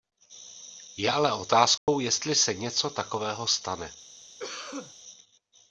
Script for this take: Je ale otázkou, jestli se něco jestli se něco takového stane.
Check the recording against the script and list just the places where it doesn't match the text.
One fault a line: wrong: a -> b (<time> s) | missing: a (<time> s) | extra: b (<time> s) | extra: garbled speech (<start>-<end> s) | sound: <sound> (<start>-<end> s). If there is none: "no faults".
sound: dropout (1.8-1.9 s)
missing: jestli se něco (2.9 s)
sound: cough (4.4-4.9 s)